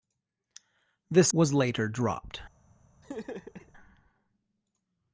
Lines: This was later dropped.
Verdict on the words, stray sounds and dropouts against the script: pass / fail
fail